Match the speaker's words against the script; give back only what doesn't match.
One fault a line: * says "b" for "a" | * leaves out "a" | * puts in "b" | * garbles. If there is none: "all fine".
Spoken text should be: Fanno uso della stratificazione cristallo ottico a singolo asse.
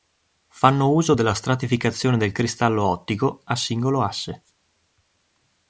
* puts in "del"